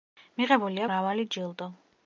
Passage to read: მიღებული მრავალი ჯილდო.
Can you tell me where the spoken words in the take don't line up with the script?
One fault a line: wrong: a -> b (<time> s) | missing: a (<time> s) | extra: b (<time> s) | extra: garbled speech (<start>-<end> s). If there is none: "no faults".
no faults